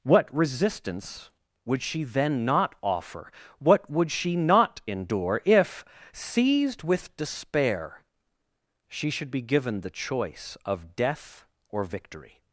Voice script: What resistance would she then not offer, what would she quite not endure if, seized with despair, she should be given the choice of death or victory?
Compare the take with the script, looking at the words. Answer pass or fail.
fail